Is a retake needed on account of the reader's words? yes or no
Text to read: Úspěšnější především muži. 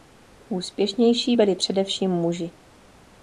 yes